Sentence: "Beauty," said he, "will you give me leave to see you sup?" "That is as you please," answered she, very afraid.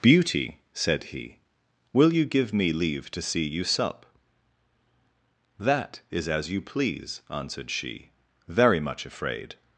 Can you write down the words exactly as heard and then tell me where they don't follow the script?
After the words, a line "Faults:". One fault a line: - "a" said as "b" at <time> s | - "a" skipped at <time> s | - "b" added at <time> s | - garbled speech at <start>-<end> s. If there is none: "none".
"Beauty," said he, "will you give me leave to see you sup?" "That is as you please," answered she, very much afraid.
Faults:
- "much" added at 8.8 s